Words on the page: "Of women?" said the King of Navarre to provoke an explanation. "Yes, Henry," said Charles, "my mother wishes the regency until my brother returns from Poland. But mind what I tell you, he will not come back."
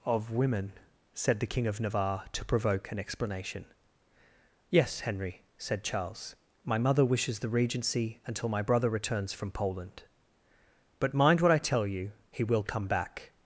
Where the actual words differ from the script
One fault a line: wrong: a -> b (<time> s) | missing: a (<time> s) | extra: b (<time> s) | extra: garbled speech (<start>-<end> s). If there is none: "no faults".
missing: not (12.6 s)